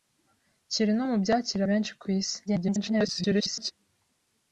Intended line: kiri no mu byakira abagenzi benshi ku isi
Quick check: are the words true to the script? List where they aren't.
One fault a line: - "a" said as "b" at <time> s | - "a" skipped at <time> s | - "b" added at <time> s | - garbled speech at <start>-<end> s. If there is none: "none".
- "abagenzi" skipped at 1.6 s
- garbled speech at 2.5-3.7 s